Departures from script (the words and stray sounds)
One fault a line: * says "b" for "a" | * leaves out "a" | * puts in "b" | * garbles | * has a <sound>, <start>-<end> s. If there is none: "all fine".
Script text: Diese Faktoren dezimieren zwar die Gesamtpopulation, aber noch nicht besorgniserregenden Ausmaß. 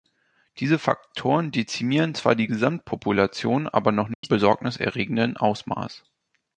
* has a dropout, 4.1-4.2 s